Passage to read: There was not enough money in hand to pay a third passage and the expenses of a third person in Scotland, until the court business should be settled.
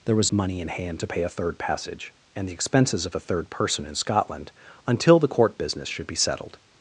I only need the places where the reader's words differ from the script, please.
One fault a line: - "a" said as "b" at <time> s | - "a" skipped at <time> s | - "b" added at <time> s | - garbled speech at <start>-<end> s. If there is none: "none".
- "not enough" skipped at 0.3 s